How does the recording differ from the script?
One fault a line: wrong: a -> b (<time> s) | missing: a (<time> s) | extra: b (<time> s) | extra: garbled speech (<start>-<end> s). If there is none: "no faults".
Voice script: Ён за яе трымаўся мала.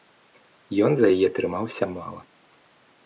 no faults